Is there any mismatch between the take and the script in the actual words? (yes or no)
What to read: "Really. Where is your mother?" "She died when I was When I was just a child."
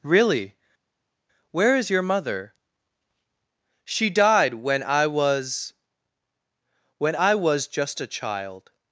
no